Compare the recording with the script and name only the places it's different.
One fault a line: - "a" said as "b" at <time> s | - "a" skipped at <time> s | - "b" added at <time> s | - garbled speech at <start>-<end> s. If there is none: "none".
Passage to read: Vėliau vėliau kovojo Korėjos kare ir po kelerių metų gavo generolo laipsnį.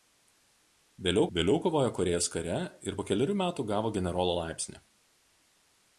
none